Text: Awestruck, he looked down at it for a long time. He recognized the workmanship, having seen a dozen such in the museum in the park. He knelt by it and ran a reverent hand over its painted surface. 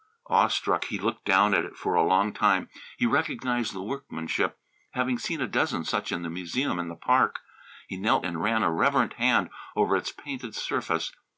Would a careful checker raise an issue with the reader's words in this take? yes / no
yes